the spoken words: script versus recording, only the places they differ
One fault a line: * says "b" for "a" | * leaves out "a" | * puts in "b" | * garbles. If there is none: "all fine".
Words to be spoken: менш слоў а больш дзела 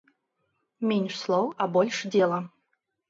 all fine